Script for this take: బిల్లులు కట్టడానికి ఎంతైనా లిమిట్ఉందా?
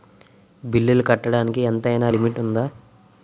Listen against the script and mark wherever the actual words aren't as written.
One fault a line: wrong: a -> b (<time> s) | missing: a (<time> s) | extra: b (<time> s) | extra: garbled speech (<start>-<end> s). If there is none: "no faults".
no faults